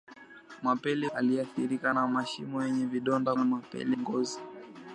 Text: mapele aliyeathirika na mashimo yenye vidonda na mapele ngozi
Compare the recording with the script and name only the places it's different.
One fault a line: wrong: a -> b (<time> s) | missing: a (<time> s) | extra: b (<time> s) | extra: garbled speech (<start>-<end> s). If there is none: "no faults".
no faults